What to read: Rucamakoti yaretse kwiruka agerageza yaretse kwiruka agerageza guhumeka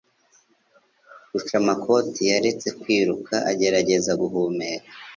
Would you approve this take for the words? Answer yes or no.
no